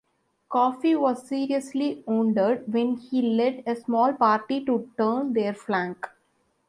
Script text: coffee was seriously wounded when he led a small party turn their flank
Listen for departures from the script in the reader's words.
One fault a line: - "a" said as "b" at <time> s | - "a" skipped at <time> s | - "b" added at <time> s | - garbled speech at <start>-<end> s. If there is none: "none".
- "to" added at 4.6 s